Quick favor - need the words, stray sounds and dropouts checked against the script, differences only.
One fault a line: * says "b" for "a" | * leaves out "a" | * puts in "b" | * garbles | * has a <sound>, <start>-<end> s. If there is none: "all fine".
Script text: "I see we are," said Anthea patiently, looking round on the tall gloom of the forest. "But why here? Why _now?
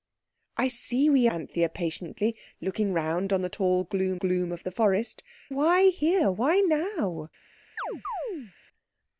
* leaves out "are said"
* puts in "gloom"
* leaves out "But"
* has a chirp, 7.8-8.5 s